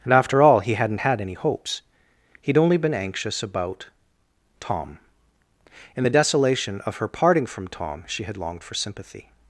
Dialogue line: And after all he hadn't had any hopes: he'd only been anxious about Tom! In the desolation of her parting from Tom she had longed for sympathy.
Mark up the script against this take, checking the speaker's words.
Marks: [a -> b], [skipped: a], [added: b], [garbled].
And after all he hadn't had any hopes: he'd only been anxious about Tom! In the desolation of her parting from Tom she had longed for sympathy.